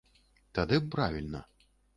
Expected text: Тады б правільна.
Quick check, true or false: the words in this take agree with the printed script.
true